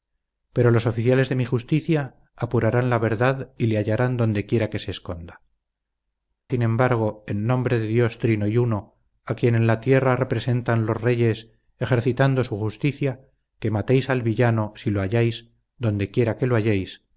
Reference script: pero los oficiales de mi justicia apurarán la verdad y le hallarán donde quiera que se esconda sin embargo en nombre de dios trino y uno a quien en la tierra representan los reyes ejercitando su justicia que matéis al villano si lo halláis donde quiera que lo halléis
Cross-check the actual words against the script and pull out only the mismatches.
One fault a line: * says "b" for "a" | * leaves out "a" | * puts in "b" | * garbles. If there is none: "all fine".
all fine